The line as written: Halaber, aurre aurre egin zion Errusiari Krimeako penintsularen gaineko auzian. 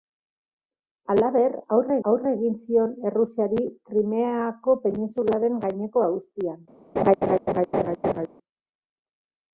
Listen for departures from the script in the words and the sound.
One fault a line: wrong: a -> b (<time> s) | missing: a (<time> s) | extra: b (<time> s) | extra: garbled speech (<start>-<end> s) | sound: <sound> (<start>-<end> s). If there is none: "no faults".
sound: laugh (7.0-8.3 s)